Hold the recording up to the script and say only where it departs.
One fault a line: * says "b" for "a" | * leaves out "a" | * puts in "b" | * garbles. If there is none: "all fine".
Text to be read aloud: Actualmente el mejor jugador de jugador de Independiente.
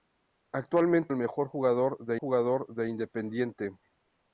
all fine